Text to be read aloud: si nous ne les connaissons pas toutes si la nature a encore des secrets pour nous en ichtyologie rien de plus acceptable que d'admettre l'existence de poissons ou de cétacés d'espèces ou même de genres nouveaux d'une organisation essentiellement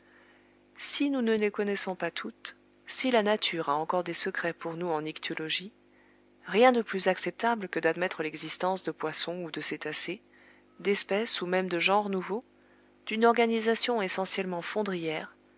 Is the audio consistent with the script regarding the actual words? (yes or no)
yes